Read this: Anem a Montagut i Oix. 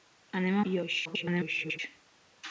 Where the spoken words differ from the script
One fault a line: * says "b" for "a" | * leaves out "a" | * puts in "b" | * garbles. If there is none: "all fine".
* leaves out "Montagut"
* garbles